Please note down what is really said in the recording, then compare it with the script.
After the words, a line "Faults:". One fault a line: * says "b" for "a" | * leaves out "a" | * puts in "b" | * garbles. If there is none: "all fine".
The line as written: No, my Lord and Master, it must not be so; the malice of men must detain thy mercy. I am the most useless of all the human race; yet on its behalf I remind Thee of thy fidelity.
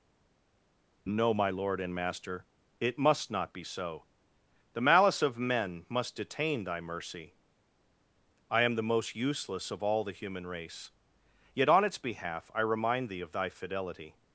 No, my Lord and Master, it must not be so; the malice of men must detain thy mercy. I am the most useless of all the human race; yet on its behalf I remind Thee of thy fidelity.
Faults:
all fine